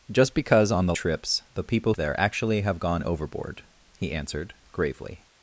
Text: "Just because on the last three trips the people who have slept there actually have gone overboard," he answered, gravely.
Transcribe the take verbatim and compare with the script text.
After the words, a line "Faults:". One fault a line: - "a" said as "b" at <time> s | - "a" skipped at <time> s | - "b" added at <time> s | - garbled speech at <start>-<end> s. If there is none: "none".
"Just because on the trips the people there actually have gone overboard," he answered, gravely.
Faults:
- "last three" skipped at 0.9 s
- "who have slept" skipped at 1.9 s